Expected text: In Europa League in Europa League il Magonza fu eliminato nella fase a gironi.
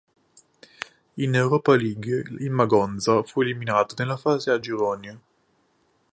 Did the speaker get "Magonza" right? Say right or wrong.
right